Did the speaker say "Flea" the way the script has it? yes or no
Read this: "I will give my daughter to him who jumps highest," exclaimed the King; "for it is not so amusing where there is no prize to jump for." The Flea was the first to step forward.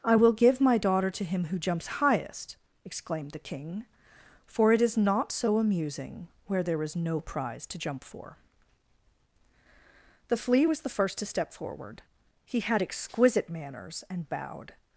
yes